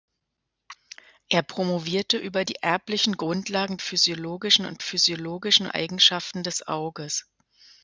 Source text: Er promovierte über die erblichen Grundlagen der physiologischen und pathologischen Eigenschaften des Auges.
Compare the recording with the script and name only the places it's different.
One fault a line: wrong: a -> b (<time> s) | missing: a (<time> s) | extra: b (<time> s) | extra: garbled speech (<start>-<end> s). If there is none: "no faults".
missing: der (3.8 s)
wrong: pathologischen -> physiologischen (4.8 s)